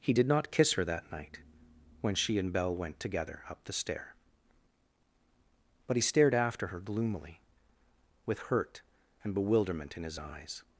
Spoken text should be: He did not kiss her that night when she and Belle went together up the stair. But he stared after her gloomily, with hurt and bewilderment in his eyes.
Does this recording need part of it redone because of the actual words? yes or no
no